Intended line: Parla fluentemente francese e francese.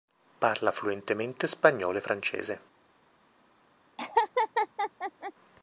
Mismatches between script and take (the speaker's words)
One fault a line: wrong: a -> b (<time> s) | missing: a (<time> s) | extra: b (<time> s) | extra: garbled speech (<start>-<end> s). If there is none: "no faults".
wrong: francese -> spagnolo (1.4 s)